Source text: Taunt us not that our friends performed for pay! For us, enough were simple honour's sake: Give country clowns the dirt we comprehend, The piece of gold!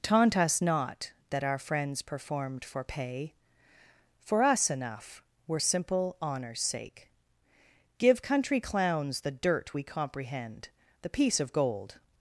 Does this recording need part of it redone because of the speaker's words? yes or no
no